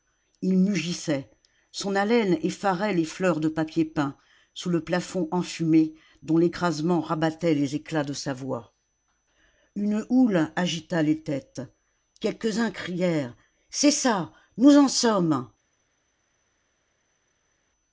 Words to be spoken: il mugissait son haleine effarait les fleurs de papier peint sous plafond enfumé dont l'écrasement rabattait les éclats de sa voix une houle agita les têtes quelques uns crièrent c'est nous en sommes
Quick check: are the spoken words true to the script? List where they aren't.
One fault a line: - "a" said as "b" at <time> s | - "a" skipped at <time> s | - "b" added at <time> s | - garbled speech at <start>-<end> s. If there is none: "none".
- "le" added at 4.7 s
- "ça" added at 13.9 s